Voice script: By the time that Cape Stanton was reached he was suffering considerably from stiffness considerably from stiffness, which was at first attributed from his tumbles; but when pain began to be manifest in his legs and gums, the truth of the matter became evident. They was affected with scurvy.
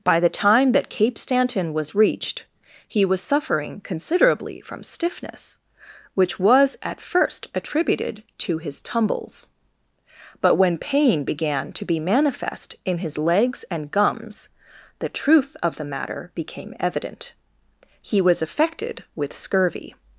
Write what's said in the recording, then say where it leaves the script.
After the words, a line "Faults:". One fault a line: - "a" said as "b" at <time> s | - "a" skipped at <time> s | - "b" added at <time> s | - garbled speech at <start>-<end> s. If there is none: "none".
By the time that Cape Stanton was reached he was suffering considerably from stiffness, which was at first attributed to his tumbles; but when pain began to be manifest in his legs and gums, the truth of the matter became evident. He was affected with scurvy.
Faults:
- "considerably from stiffness" skipped at 5.6 s
- "from" said as "to" at 8.4 s
- "They" said as "He" at 18.0 s